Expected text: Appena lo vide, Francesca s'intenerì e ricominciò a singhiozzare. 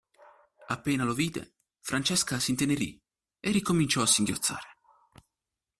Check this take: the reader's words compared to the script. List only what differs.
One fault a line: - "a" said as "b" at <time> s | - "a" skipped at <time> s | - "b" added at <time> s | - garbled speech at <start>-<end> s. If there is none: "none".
none